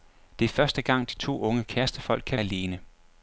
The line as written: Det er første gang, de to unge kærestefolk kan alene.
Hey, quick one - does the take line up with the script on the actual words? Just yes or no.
yes